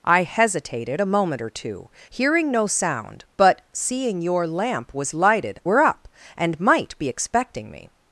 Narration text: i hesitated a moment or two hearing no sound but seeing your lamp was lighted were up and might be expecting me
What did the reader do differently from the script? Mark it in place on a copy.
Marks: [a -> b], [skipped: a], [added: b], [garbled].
i hesitated a moment or two hearing no sound but seeing your lamp was lighted were up and might be expecting me